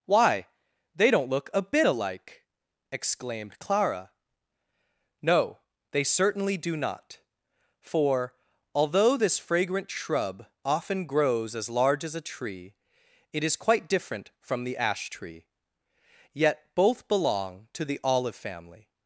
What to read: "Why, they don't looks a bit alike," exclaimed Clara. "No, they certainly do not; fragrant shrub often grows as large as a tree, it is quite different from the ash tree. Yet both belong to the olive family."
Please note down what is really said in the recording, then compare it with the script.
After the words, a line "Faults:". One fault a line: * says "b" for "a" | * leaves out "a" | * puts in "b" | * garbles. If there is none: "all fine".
"Why, they don't look a bit alike," exclaimed Clara. "No, they certainly do not; for, although this fragrant shrub often grows as large as a tree, it is quite different from the ash tree. Yet both belong to the olive family."
Faults:
* says "look" for "looks"
* puts in "for although this"